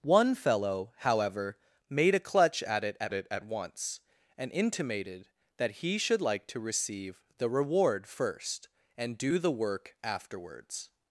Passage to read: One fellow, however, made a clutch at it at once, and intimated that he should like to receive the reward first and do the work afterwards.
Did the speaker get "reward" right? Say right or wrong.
right